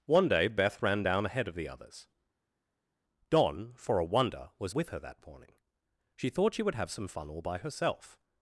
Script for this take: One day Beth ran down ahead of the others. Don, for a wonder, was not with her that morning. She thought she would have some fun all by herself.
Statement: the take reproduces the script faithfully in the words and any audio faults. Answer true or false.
false